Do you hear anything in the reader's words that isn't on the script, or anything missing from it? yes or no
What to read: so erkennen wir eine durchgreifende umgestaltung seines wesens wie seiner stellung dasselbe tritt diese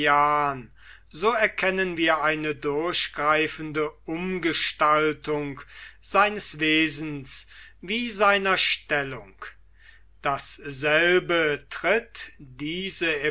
no